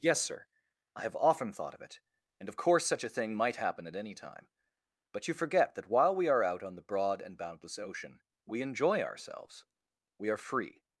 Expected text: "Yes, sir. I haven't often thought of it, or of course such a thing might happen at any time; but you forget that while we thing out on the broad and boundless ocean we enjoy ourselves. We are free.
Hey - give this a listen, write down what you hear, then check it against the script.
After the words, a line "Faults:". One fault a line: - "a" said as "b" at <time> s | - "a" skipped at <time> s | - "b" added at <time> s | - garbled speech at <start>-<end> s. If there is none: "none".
"Yes, sir. I have often thought of it, and of course such a thing might happen at any time; but you forget that while we are out on the broad and boundless ocean we enjoy ourselves. We are free.
Faults:
- "haven't" said as "have" at 1.0 s
- "or" said as "and" at 2.4 s
- "thing" said as "are" at 6.3 s